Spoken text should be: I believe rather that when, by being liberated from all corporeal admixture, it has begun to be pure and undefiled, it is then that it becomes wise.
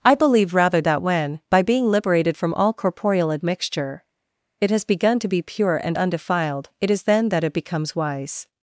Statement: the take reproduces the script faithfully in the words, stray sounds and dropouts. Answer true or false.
true